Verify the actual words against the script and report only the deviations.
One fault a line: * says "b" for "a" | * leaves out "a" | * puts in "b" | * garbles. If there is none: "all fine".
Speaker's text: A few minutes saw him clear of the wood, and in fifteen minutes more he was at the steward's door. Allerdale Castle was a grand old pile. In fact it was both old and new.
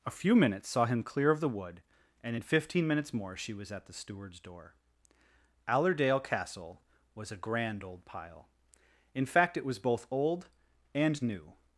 * says "she" for "he"